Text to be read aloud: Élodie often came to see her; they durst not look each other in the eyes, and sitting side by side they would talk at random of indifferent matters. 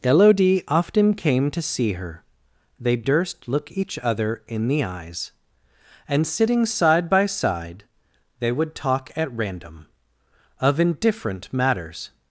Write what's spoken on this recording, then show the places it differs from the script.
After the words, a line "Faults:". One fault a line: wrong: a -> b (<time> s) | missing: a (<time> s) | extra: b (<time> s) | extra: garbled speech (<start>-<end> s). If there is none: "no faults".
Élodie often came to see her; they durst look each other in the eyes, and sitting side by side they would talk at random of indifferent matters.
Faults:
missing: not (3.5 s)